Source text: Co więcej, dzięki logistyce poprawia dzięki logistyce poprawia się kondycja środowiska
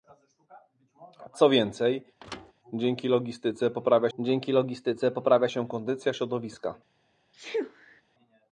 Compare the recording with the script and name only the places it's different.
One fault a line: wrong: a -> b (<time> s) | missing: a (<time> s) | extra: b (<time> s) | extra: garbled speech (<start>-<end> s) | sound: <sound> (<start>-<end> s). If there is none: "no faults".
sound: thud (2.2-2.5 s)
sound: sneeze (7.3-8.0 s)